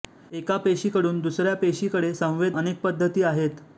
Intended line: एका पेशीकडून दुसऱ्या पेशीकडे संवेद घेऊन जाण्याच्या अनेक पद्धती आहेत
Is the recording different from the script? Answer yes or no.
yes